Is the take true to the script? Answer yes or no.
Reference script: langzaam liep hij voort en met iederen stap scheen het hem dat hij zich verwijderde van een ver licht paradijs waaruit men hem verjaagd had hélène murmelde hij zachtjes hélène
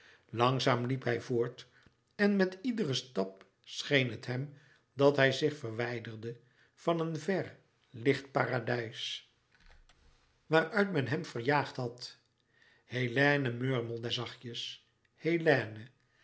no